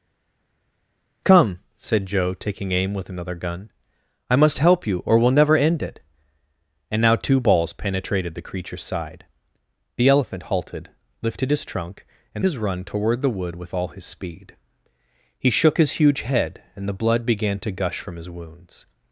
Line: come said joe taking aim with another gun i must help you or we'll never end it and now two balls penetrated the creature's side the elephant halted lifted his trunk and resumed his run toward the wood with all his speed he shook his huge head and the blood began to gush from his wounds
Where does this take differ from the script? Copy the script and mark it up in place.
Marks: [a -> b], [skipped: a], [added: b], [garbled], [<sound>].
come said joe taking aim with another gun i must help you or we'll never end it and now two balls penetrated the creature's side the elephant halted lifted his trunk and [skipped: resumed] his run toward the wood with all his speed he shook his huge head and the blood began to gush from his wounds